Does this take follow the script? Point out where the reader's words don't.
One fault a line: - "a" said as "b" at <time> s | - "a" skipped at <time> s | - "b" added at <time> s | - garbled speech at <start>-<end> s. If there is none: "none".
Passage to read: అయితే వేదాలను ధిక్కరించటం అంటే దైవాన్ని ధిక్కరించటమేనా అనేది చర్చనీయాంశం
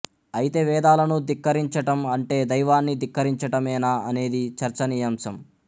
none